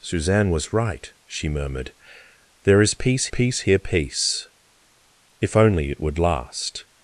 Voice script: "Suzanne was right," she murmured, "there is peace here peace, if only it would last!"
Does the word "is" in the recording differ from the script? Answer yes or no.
no